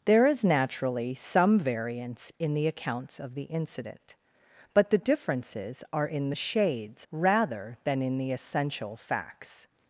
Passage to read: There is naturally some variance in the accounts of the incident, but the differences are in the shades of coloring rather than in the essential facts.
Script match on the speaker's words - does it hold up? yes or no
no